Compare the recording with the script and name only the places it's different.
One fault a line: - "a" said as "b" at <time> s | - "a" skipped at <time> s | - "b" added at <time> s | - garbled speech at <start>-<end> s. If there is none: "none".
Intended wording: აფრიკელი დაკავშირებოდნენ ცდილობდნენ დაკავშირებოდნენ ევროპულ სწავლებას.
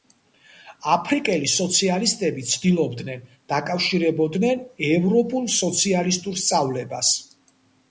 - "დაკავშირებოდნენ" said as "სოციალისტები" at 1.6 s
- "სოციალისტურ" added at 5.6 s